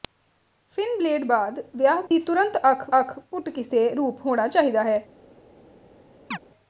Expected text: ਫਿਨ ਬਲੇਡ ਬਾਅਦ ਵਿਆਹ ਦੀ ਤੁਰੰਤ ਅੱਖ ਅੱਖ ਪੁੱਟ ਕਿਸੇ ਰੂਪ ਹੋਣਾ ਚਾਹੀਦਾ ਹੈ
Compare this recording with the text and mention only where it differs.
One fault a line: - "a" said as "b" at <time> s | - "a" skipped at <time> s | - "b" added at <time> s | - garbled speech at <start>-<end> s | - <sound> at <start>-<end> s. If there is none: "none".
- dropout at 2.1-2.1 s
- chirp at 6.3-6.4 s